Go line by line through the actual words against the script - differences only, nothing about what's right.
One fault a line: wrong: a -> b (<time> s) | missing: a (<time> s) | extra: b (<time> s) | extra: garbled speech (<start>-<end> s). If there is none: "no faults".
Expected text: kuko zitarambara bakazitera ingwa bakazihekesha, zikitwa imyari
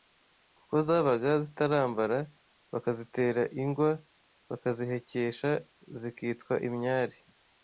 extra: zabaga (0.9 s)